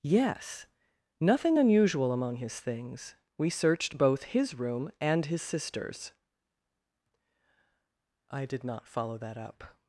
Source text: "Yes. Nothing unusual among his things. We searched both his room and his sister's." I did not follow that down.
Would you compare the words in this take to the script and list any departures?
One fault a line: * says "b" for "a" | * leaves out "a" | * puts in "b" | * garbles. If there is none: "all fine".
* says "up" for "down"